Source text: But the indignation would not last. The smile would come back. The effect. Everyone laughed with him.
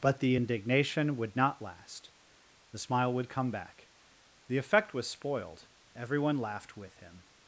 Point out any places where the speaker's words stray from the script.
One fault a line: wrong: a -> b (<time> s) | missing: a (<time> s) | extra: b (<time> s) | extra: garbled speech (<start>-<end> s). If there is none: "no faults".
extra: was spoiled (4.9 s)